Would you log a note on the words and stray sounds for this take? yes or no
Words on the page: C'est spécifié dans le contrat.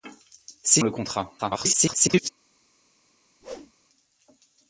yes